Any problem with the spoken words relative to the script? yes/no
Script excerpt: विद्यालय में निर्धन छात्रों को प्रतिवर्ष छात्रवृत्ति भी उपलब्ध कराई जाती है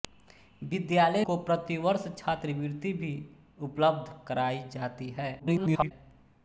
yes